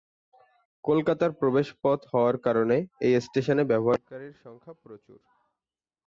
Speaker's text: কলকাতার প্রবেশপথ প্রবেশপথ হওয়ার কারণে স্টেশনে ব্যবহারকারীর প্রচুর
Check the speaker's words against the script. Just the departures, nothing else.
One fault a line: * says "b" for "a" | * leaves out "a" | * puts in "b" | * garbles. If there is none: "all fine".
* leaves out "প্রবেশপথ"
* puts in "এই"
* puts in "সংখ্যা"